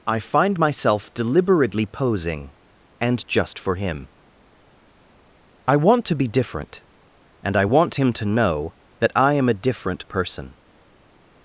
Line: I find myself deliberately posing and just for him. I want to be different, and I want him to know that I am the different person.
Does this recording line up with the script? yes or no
no